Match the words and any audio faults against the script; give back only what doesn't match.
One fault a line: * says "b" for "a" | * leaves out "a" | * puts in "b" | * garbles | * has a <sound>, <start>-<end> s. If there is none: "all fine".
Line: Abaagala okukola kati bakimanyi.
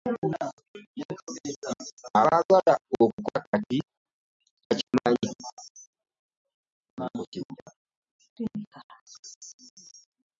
* has a dropout, 4.9-4.9 s